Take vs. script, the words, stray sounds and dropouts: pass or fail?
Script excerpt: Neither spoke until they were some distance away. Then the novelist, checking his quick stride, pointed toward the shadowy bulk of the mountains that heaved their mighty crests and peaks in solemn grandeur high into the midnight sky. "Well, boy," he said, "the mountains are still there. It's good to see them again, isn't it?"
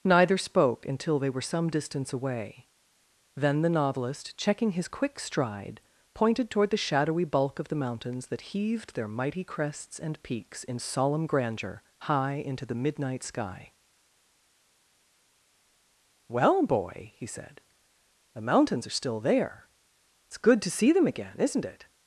pass